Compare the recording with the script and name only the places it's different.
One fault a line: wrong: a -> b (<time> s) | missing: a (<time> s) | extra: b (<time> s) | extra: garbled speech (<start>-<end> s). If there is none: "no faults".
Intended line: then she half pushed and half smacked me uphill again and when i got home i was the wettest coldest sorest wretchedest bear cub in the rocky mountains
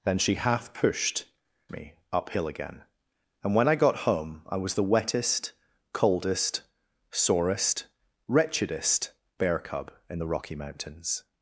missing: and half smacked (1.2 s)